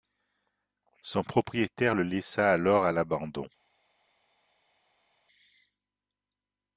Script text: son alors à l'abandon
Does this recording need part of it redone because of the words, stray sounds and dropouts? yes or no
yes